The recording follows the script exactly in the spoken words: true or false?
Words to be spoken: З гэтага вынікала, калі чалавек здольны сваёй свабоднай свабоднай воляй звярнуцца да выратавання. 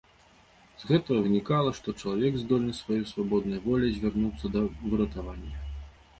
false